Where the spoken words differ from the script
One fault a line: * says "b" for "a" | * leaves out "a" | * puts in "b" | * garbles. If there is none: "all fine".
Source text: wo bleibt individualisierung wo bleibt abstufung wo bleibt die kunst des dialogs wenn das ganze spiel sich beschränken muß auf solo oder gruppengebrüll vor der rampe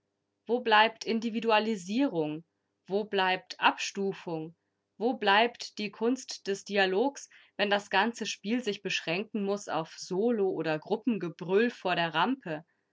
all fine